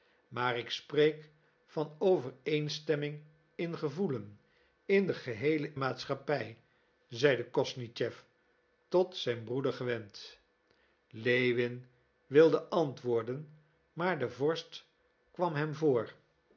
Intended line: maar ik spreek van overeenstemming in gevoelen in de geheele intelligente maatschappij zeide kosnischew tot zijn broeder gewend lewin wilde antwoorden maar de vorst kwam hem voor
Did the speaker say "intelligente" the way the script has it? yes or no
no